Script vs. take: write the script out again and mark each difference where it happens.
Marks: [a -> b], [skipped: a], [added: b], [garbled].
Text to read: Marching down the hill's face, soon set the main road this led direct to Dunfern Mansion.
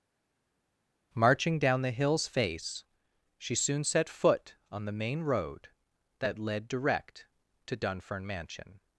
Marching down the hill's face, [added: she] soon set [added: foot on] the main road [this -> that] led direct to Dunfern Mansion.